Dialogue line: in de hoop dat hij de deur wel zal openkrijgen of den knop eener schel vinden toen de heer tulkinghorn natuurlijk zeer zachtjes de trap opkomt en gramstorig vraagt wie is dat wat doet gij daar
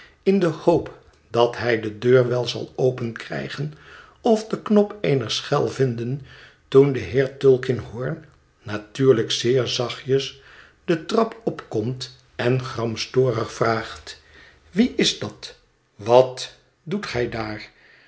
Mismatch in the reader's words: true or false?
false